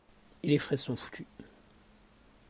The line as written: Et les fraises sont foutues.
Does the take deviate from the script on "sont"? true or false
false